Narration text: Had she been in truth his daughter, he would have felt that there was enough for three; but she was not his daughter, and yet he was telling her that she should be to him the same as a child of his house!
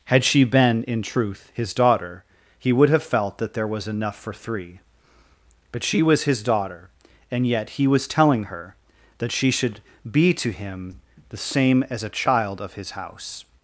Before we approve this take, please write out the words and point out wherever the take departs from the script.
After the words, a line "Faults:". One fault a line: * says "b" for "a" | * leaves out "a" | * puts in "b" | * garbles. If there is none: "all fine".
Had she been in truth his daughter, he would have felt that there was enough for three; but she was his daughter, and yet he was telling her that she should be to him the same as a child of his house!
Faults:
* leaves out "not"